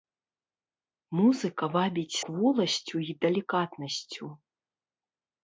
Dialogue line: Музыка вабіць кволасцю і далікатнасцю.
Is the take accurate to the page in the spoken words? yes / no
yes